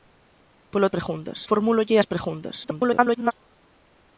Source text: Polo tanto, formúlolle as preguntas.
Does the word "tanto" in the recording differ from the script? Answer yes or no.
yes